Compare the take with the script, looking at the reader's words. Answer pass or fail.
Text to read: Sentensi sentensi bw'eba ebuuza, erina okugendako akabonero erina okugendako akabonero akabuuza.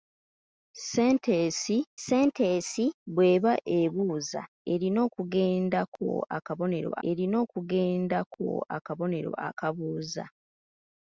pass